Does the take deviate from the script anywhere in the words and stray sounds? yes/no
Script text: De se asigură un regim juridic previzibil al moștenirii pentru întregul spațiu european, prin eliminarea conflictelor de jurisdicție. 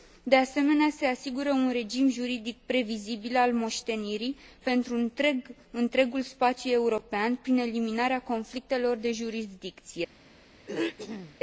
yes